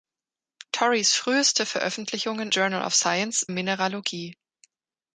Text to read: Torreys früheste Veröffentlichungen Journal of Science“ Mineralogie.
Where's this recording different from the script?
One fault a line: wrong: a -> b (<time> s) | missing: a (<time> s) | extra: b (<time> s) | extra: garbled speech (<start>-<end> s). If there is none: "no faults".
no faults